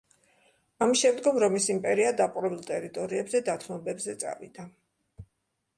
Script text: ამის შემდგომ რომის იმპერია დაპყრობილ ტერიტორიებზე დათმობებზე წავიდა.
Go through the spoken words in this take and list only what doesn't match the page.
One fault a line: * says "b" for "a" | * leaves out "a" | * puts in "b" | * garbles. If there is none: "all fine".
all fine